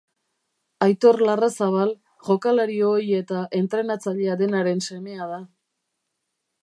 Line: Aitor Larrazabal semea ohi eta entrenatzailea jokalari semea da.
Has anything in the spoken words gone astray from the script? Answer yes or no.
yes